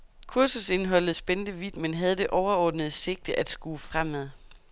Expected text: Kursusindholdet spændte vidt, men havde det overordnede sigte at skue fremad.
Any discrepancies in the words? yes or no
no